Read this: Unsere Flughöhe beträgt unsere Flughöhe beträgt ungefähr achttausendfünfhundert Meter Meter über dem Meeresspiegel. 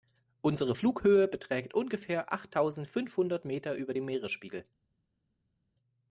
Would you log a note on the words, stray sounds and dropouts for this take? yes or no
yes